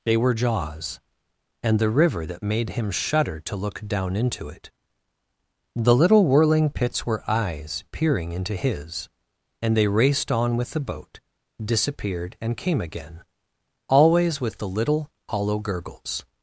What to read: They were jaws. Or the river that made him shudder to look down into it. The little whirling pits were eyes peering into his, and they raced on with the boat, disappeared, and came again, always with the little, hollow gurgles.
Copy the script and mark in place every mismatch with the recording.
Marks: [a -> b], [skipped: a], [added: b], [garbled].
They were jaws. [Or -> And] the river that made him shudder to look down into it. The little whirling pits were eyes peering into his, and they raced on with the boat, disappeared, and came again, always with the little, hollow gurgles.